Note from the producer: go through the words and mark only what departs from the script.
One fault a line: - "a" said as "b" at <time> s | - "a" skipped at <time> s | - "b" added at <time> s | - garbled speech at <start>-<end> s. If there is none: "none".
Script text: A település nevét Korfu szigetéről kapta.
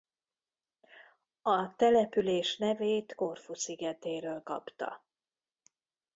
none